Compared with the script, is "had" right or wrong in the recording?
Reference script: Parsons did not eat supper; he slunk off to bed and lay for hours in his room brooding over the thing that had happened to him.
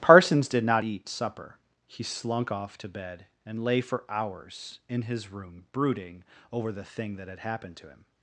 right